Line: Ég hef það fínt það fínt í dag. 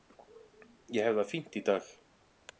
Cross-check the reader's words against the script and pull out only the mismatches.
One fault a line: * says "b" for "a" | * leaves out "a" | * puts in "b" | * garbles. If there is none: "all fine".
* leaves out "það fínt"